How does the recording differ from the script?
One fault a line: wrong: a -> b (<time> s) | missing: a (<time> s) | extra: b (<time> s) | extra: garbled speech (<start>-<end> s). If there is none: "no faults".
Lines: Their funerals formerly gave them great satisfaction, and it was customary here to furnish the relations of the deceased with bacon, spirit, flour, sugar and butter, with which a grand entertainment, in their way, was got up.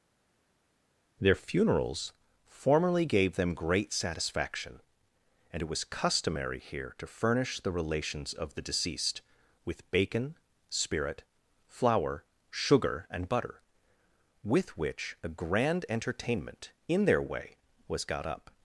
no faults